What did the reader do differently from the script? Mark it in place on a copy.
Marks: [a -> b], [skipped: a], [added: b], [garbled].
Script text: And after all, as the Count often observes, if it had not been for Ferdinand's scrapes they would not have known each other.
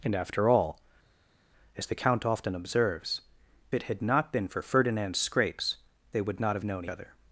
And after all, as the Count often observes, [skipped: if] it had not been for Ferdinand's scrapes they would not have known [skipped: each] other.